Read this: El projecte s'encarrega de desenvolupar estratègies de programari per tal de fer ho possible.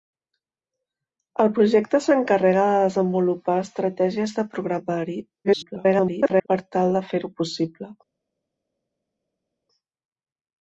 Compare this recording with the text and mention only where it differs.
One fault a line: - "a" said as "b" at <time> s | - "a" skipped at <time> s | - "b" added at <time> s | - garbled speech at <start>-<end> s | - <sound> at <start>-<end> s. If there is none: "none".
- garbled speech at 5.4-6.5 s